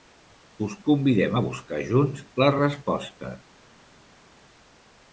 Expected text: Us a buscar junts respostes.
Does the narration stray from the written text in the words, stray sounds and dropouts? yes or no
yes